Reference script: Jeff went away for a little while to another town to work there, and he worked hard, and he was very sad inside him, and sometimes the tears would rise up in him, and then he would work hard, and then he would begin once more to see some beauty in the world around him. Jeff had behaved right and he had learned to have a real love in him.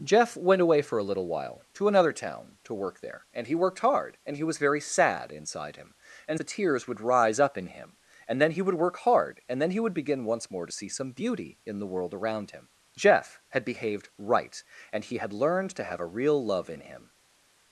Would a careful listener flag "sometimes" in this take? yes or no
yes